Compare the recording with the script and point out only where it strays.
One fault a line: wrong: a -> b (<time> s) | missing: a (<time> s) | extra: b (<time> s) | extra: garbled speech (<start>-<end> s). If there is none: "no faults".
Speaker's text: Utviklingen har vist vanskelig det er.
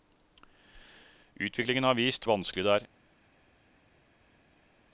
no faults